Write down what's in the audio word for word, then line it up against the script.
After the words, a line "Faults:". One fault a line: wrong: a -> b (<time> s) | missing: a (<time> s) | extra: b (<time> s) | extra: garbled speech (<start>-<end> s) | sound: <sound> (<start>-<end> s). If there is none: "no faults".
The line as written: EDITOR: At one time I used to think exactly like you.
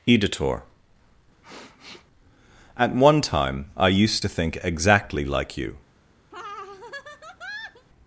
EDITOR: At one time I used to think exactly like you.
Faults:
sound: sniff (1.4-2.1 s)
sound: laugh (6.3-7.9 s)